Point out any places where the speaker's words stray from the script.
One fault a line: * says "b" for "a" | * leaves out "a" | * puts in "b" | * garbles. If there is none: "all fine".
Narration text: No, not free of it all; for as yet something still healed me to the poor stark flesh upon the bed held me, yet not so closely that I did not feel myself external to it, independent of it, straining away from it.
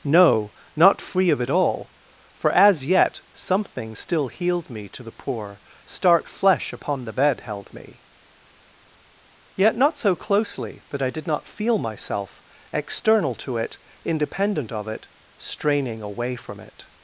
all fine